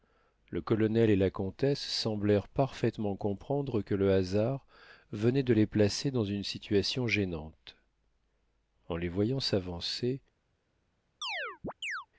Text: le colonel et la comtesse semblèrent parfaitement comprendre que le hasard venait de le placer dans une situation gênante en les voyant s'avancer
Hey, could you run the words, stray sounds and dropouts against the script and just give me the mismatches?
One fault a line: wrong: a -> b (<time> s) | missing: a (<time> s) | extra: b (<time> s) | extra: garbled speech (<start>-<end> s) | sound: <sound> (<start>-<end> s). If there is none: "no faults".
wrong: le -> les (5.5 s)
sound: chirp (11.2-12.1 s)